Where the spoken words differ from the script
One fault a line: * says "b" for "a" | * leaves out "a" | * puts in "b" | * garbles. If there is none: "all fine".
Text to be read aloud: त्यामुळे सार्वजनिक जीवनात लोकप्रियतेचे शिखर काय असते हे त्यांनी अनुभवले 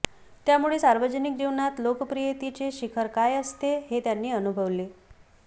all fine